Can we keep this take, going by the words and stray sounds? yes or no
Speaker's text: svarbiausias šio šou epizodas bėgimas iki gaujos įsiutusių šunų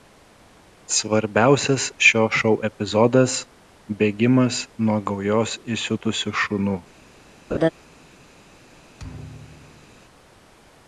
no